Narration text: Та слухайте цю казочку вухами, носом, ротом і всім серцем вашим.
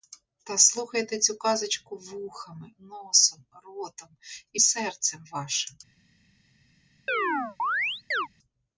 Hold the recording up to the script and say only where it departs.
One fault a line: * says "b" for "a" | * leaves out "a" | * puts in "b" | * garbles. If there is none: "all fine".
* leaves out "всім"